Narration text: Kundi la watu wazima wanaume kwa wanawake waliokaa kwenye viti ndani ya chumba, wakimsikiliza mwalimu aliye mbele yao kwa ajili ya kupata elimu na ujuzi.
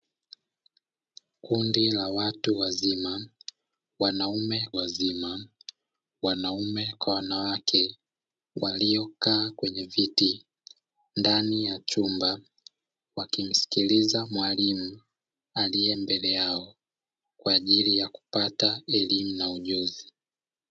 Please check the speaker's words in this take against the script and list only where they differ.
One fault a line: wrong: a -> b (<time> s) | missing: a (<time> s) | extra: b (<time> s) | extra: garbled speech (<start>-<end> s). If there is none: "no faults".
extra: wazima wanaume (4.7 s)